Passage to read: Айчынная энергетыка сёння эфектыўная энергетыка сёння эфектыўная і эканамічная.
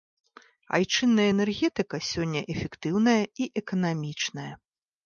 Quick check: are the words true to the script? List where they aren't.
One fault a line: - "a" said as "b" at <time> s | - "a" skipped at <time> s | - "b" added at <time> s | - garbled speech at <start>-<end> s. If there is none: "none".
- "энергетыка сёння эфектыўная" skipped at 3.2 s